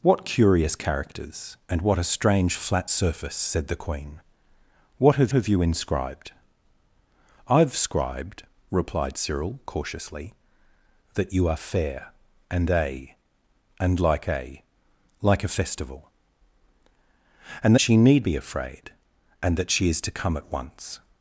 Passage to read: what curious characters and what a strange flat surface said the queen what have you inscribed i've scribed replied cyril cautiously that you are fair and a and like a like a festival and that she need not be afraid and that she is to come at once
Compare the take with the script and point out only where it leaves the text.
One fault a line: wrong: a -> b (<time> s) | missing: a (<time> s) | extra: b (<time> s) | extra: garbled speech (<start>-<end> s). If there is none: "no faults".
extra: have (5.3 s)
missing: that (17.7 s)
missing: not (18.3 s)